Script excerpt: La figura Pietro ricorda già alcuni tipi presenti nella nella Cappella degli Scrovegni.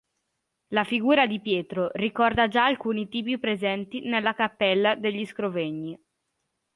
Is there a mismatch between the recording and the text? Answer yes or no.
yes